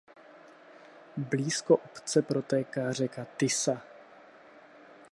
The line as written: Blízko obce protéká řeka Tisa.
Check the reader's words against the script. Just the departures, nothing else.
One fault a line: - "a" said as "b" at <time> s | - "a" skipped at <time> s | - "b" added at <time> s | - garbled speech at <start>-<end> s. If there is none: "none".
none